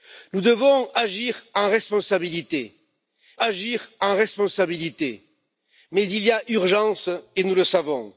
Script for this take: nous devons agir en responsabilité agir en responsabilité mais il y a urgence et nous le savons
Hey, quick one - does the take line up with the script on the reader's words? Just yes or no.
yes